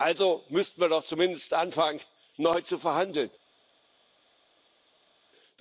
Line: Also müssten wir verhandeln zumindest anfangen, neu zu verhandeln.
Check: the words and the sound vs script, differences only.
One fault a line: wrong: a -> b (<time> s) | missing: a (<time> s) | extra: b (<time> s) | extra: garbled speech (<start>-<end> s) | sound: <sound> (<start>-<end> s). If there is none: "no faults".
wrong: verhandeln -> doch (0.9 s)